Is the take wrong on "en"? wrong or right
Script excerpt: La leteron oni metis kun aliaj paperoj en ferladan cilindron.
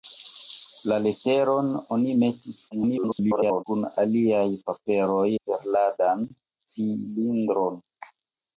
wrong